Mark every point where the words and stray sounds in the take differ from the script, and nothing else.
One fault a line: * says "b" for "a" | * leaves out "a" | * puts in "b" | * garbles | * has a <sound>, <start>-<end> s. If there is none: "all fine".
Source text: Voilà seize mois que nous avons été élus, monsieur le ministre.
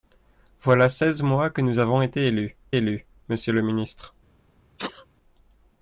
* puts in "élus"
* has a sneeze, 4.8-5.1 s